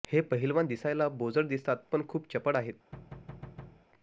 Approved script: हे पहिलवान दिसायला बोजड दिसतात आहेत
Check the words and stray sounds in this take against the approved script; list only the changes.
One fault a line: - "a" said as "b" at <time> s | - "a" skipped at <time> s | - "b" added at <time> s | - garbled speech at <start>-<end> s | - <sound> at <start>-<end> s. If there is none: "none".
- "पण खूप चपळ" added at 1.9 s
- thud at 2.9-3.9 s